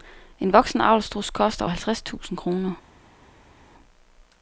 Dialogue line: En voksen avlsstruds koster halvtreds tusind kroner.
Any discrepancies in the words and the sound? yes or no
no